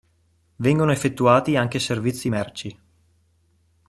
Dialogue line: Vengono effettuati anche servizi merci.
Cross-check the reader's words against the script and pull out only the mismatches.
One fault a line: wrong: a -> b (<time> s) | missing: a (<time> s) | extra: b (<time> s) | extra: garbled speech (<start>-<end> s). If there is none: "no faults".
no faults